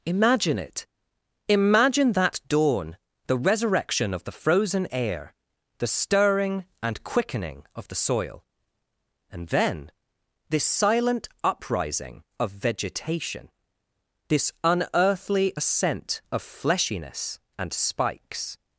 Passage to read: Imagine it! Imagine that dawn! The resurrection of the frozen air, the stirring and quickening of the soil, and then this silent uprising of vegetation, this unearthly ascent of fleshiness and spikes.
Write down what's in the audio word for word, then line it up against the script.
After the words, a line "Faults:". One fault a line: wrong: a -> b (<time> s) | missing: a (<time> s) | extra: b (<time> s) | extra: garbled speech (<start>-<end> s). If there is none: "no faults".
Imagine it! Imagine that dawn! The resurrection of the frozen air, the stirring and quickening of the soil, and then this silent uprising of vegetation, this unearthly ascent of fleshiness and spikes.
Faults:
no faults